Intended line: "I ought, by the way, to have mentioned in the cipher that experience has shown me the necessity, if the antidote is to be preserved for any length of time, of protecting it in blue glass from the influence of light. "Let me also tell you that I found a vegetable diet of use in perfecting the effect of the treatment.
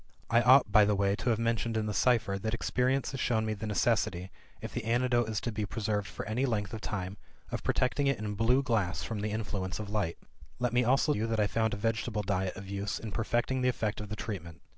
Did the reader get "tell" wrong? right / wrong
wrong